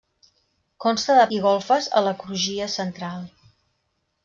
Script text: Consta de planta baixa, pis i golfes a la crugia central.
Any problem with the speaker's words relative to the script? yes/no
yes